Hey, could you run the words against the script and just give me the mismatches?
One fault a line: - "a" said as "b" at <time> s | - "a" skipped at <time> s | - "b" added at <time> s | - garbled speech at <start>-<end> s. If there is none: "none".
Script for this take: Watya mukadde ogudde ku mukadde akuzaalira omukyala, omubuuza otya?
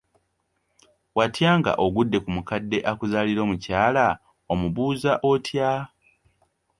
- "mukadde" said as "nga" at 1.6 s